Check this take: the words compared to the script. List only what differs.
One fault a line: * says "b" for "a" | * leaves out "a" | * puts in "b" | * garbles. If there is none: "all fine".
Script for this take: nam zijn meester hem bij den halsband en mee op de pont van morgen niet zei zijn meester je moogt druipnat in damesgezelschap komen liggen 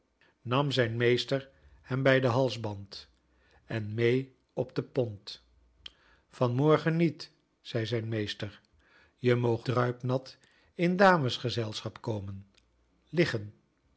all fine